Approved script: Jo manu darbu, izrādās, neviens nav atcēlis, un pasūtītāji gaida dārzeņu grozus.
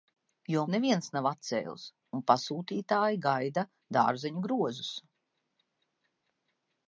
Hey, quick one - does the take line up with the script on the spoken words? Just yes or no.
no